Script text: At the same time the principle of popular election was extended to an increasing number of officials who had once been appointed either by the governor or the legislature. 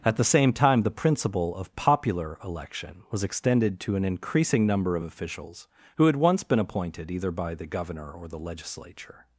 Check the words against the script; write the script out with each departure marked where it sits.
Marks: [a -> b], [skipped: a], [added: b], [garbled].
At the same time the principle of popular election was extended to an increasing number of officials who had once been appointed either by the governor or the legislature.